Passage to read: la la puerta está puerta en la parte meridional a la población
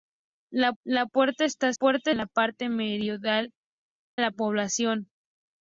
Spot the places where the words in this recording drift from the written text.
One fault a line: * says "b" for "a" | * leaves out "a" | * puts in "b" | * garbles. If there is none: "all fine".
all fine